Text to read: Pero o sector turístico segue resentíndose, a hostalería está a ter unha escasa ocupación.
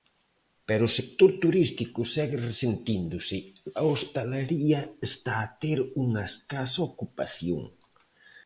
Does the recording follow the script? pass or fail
pass